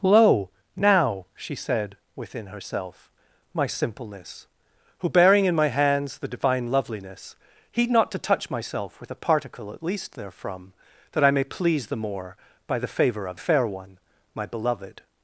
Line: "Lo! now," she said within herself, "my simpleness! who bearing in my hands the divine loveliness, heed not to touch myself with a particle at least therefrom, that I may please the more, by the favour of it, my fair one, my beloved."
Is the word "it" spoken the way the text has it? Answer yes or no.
no